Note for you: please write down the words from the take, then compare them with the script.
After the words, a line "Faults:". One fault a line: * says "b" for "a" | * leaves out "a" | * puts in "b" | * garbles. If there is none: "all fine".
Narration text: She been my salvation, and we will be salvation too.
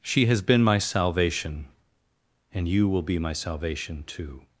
She has been my salvation, and you will be my salvation too.
Faults:
* puts in "has"
* says "you" for "we"
* puts in "my"